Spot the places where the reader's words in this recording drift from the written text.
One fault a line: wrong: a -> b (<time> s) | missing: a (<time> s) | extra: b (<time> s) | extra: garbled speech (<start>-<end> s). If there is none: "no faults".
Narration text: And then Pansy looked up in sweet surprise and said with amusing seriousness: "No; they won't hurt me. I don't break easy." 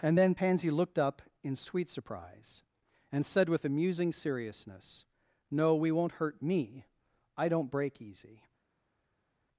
wrong: they -> we (5.8 s)